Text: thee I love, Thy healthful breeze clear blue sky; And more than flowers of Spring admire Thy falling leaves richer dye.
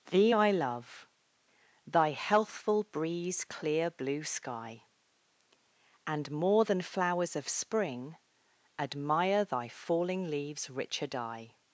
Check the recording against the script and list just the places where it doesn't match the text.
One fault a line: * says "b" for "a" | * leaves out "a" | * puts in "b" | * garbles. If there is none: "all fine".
all fine